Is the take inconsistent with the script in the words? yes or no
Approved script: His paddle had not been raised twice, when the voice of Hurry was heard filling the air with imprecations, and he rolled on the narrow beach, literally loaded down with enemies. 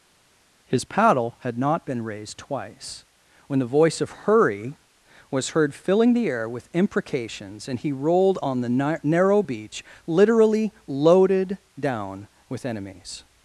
no